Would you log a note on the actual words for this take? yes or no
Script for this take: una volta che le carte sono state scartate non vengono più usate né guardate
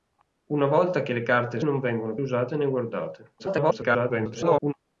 yes